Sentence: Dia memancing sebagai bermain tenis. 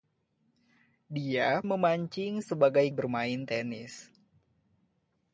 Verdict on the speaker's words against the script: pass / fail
pass